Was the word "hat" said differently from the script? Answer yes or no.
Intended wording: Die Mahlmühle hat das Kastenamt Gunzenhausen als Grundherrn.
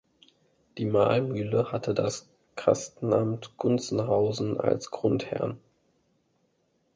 yes